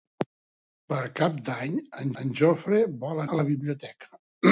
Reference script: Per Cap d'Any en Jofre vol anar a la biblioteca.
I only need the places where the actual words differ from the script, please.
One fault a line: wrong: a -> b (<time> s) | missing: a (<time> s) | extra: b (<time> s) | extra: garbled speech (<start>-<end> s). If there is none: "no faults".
extra: en (2.2 s)
missing: anar (3.2 s)